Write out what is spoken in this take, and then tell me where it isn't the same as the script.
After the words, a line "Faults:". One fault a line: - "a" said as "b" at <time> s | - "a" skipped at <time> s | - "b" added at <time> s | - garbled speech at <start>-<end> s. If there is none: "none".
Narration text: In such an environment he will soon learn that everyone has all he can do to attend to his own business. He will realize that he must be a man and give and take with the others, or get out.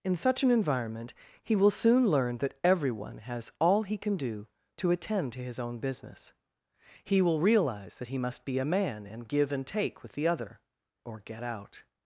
In such an environment he will soon learn that everyone has all he can do to attend to his own business. He will realize that he must be a man and give and take with the other, or get out.
Faults:
- "others" said as "other" at 10.3 s